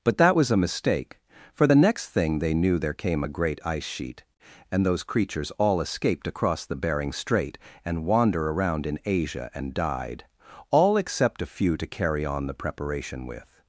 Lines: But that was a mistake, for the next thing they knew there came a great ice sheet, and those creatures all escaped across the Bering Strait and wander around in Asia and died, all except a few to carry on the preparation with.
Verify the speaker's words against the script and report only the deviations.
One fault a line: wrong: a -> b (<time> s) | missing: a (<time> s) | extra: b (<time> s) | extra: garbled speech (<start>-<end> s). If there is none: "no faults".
no faults